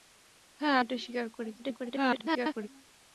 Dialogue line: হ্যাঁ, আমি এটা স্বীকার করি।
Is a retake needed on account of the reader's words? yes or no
yes